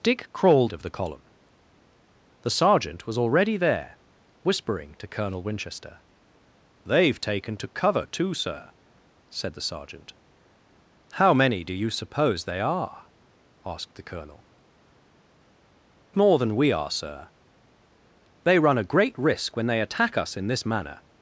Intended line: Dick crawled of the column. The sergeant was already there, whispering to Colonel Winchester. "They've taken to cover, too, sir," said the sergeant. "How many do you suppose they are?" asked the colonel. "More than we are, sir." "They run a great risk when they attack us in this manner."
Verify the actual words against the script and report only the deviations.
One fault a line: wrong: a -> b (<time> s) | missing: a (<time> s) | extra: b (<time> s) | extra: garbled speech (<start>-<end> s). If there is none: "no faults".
no faults